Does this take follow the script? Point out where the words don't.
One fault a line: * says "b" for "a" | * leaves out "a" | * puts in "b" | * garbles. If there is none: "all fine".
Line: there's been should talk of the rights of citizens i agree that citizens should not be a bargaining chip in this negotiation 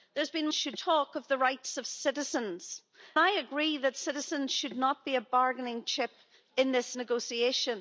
all fine